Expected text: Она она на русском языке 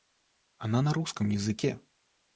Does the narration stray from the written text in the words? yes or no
yes